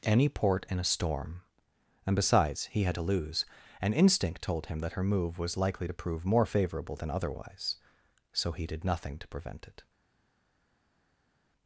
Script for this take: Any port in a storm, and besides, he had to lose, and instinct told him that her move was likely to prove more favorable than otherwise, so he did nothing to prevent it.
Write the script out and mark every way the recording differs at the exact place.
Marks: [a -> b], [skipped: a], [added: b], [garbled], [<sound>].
Any port in a storm, and besides, he had to lose, and instinct told him that her move was likely to prove more favorable than otherwise, so he did nothing to prevent it.